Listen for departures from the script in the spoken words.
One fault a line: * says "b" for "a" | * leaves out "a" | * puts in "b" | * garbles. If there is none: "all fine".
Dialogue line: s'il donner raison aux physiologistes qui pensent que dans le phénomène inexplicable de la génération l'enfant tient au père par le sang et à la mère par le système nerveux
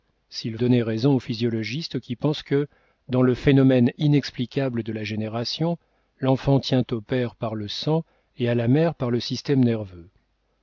all fine